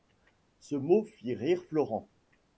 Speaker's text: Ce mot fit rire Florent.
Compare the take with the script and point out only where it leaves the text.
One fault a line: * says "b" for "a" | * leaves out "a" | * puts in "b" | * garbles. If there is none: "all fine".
all fine